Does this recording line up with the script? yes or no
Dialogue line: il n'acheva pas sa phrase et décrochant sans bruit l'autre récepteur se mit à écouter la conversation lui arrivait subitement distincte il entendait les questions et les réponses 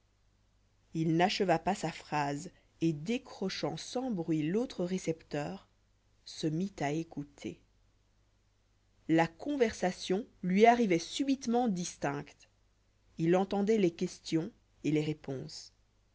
yes